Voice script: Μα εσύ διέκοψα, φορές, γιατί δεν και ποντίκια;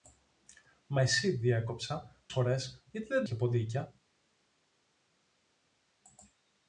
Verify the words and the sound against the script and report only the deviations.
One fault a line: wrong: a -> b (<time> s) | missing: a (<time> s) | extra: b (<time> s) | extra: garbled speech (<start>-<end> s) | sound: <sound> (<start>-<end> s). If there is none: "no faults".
no faults